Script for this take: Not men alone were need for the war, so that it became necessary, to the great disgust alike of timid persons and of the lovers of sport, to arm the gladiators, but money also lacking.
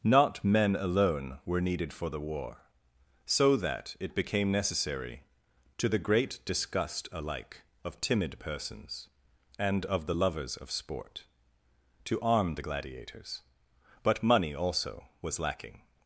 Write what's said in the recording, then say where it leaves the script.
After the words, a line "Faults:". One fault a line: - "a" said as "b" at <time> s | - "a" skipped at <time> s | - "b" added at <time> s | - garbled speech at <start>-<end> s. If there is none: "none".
Not men alone were needed for the war, so that it became necessary, to the great disgust alike of timid persons and of the lovers of sport, to arm the gladiators, but money also was lacking.
Faults:
- "need" said as "needed" at 1.6 s
- "was" added at 15.2 s